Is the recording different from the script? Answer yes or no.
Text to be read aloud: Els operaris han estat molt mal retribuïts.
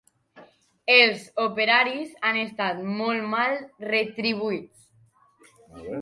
no